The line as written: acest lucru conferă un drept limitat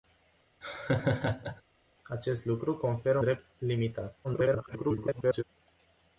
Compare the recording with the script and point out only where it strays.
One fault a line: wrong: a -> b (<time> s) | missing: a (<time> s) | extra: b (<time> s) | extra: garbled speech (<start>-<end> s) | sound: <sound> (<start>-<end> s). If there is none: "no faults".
sound: laugh (0.6-1.6 s)
missing: un (3.2 s)
extra: garbled speech (4.2-5.4 s)